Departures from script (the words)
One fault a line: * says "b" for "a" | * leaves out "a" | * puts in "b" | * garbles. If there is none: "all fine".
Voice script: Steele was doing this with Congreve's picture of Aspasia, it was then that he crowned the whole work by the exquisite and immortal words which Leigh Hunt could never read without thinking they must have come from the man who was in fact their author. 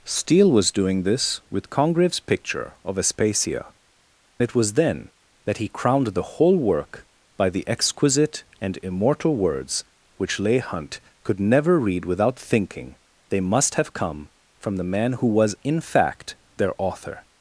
all fine